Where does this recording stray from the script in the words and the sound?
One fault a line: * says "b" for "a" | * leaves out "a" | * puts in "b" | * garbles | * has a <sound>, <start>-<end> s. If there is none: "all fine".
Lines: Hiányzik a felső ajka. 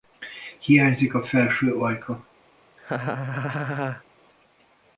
* has a laugh, 2.8-4.0 s